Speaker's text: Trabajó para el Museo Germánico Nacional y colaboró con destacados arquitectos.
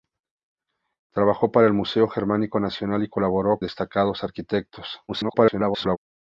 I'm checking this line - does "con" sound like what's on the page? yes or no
no